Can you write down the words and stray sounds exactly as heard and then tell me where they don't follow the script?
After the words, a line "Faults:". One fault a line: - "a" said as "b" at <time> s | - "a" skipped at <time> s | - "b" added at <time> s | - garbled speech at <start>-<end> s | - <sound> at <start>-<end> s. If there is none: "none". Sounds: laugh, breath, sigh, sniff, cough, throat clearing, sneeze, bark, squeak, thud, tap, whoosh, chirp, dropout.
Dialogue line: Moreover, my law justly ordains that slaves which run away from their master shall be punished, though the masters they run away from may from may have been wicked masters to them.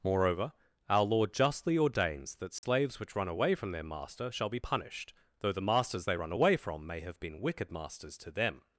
Moreover, our law justly ordains that slaves which run away from their master shall be punished, though the masters they run away from may have been wicked masters to them.
Faults:
- "my" said as "our" at 0.9 s
- dropout at 2.6-2.6 s
- "from may" skipped at 7.0 s